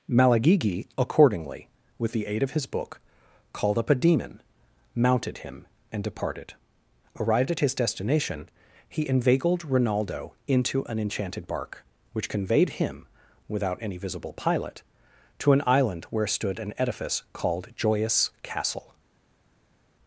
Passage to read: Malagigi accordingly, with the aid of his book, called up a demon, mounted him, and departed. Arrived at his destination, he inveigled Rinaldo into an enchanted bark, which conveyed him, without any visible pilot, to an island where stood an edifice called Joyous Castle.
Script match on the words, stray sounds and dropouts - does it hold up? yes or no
yes